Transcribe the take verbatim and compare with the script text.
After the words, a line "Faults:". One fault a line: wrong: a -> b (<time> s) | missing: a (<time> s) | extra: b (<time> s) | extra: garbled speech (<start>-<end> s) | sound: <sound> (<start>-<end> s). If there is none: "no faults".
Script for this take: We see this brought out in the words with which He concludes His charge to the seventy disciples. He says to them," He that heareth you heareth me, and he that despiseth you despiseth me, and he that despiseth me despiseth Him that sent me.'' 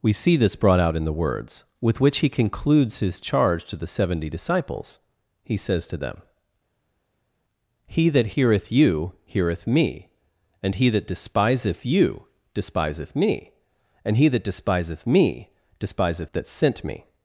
We see this brought out in the words with which He concludes His charge to the seventy disciples. He says to them," He that heareth you heareth me, and he that despiseth you despiseth me, and he that despiseth me despiseth That sent me.''
Faults:
missing: Him (16.3 s)